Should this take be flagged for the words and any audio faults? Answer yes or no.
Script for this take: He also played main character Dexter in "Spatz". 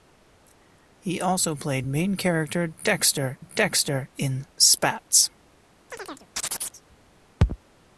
yes